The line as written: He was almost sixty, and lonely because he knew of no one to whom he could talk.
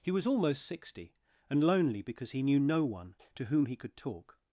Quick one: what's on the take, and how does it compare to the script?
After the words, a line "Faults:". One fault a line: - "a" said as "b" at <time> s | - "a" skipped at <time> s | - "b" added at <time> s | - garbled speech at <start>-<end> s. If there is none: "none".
He was almost sixty, and lonely because he knew no one to whom he could talk.
Faults:
- "of" skipped at 2.6 s